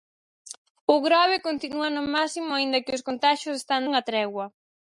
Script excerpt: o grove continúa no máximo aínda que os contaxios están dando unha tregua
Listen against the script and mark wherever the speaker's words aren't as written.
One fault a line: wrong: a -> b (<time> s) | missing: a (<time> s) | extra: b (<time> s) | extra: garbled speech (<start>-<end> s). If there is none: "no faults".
missing: dando (3.8 s)